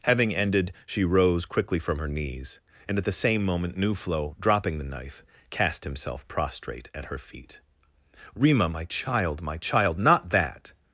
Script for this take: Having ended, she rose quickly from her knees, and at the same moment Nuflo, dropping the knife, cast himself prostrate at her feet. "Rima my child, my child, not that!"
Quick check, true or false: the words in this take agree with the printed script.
true